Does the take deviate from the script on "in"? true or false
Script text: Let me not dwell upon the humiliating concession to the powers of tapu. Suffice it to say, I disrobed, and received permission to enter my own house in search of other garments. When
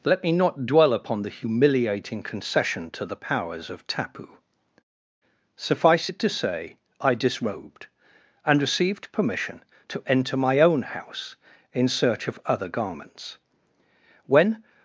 false